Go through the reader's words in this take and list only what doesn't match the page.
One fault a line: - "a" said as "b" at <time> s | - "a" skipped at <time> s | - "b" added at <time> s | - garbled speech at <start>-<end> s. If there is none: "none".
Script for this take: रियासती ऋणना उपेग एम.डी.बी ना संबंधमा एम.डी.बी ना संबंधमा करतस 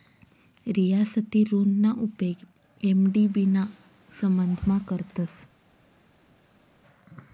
- "एम.डी.बी ना संबंधमा" skipped at 4.8 s